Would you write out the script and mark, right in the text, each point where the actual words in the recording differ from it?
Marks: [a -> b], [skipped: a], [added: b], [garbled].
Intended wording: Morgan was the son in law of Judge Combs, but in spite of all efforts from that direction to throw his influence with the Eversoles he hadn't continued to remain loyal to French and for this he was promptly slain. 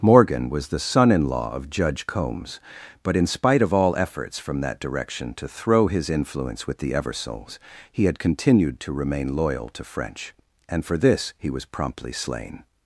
Morgan was the son in law of Judge Combs, but in spite of all efforts from that direction to throw his influence with the Eversoles he [hadn't -> had] continued to remain loyal to French and for this he was promptly slain.